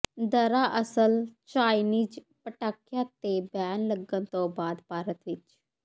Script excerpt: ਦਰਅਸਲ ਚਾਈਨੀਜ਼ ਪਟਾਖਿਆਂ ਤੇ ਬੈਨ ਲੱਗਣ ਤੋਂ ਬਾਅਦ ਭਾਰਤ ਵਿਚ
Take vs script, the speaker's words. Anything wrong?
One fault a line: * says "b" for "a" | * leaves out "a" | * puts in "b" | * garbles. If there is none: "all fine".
all fine